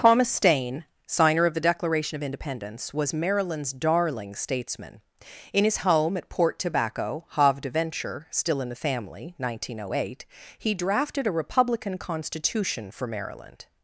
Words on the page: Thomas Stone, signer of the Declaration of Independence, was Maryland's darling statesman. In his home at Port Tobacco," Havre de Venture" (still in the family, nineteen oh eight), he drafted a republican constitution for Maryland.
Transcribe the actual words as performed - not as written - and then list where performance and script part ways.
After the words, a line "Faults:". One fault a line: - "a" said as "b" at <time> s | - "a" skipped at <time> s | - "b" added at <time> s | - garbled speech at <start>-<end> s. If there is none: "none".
Thomas Stain, signer of the Declaration of Independence, was Maryland's darling statesman. In his home at Port Tobacco," Havre de Venture" (still in the family, nineteen oh eight), he drafted a republican constitution for Maryland.
Faults:
- "Stone" said as "Stain" at 0.3 s